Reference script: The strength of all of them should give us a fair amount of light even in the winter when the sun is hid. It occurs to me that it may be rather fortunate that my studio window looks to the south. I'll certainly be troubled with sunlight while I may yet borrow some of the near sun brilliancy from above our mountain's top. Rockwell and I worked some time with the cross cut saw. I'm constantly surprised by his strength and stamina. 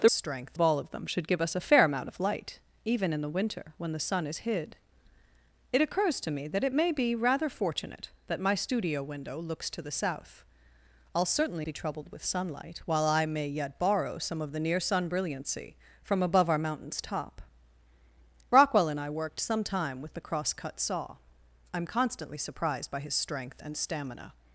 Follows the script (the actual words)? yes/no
yes